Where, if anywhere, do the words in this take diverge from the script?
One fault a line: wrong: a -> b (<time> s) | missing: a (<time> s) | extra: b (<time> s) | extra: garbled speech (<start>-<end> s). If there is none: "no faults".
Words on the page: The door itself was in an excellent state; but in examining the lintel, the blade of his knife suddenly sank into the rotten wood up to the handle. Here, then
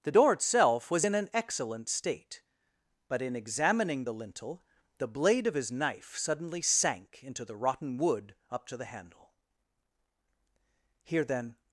no faults